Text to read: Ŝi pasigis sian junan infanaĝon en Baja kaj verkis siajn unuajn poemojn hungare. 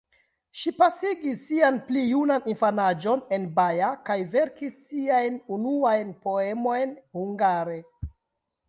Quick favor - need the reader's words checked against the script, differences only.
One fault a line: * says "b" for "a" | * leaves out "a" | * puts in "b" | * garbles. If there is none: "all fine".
* puts in "pli"